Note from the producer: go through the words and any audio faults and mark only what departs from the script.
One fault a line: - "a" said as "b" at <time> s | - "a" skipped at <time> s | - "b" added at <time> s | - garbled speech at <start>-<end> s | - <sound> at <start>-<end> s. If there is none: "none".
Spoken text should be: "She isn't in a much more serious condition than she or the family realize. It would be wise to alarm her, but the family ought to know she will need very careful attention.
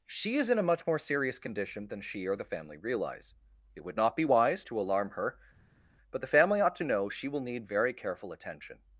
- "isn't" said as "is" at 0.4 s
- "not" added at 4.0 s